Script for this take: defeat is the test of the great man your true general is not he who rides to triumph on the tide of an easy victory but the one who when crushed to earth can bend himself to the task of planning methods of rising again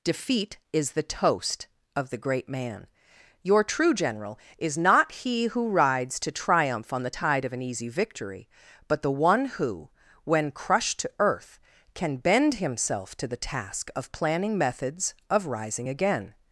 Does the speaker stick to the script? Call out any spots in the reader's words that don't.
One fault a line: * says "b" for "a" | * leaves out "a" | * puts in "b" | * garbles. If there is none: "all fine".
* says "toast" for "test"